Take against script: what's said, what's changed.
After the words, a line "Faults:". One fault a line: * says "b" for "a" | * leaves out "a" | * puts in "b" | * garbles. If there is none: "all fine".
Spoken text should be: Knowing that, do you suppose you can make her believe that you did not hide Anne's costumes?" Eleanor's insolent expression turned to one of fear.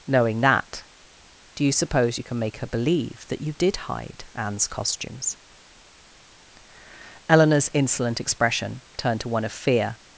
Knowing that, do you suppose you can make her believe that you did hide Anne's costumes?" Eleanor's insolent expression turned to one of fear.
Faults:
* leaves out "not"